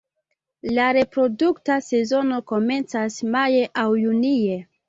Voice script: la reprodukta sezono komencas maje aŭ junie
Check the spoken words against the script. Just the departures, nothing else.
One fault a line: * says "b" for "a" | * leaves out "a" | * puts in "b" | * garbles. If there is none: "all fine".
all fine